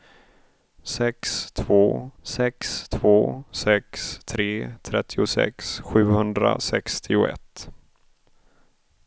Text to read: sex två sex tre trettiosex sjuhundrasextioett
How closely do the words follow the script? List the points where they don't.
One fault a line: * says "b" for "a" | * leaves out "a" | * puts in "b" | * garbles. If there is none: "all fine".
* puts in "två sex"